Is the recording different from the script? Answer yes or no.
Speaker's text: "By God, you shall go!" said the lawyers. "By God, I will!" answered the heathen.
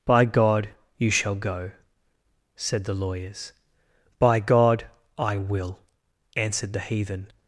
no